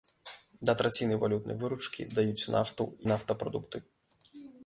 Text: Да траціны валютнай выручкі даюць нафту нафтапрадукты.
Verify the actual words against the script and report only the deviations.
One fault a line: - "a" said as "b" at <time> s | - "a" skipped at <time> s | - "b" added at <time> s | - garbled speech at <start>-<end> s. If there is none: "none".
none